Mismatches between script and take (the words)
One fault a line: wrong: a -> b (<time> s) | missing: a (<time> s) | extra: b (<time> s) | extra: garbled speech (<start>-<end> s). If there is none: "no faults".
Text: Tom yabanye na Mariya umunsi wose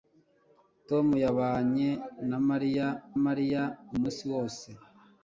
extra: Mariya (3.2 s)